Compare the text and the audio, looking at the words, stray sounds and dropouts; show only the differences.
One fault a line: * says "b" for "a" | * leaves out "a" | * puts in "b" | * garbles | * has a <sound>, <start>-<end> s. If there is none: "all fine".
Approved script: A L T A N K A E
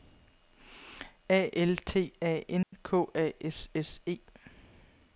* has a dropout, 2.6-2.7 s
* puts in "S S"